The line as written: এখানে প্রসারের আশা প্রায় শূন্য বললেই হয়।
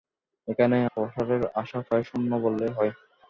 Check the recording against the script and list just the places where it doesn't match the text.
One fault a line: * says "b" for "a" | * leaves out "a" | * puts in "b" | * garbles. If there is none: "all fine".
all fine